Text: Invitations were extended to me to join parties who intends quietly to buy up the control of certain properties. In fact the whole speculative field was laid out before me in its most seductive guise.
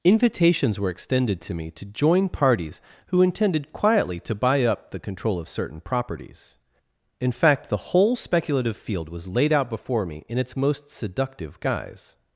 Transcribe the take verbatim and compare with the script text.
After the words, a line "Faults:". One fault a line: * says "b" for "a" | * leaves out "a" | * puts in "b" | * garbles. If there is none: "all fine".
Invitations were extended to me to join parties who intended quietly to buy up the control of certain properties. In fact the whole speculative field was laid out before me in its most seductive guise.
Faults:
* says "intended" for "intends"